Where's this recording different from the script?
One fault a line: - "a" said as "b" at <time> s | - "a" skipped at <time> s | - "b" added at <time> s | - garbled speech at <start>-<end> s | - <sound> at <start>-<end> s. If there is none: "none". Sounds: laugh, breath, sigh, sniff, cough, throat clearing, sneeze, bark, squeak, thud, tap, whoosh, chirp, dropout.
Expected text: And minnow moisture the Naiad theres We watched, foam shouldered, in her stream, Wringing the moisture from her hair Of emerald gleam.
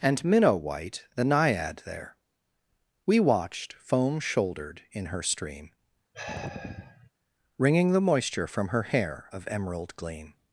- "moisture" said as "white" at 0.5 s
- "theres" said as "there" at 1.8 s
- sigh at 6.1-7.1 s